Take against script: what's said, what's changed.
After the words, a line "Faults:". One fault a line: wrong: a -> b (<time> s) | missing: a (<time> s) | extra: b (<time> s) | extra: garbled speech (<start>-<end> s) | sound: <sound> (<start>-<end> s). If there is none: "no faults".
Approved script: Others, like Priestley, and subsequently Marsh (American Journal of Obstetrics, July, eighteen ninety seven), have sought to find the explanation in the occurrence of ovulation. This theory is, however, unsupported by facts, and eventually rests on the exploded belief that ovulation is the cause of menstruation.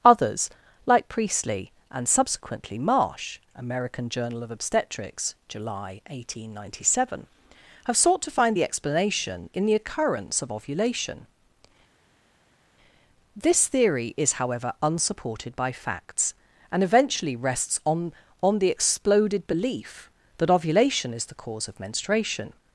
Others, like Priestley, and subsequently Marsh (American Journal of Obstetrics, July, eighteen ninety seven), have sought to find the explanation in the occurrence of ovulation. This theory is, however, unsupported by facts, and eventually rests on on the exploded belief that ovulation is the cause of menstruation.
Faults:
extra: on (18.4 s)